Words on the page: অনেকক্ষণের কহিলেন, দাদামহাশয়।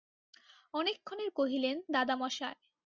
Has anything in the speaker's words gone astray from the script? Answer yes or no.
no